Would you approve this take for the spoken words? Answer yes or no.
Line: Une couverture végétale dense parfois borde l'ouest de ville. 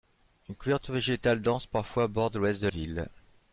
yes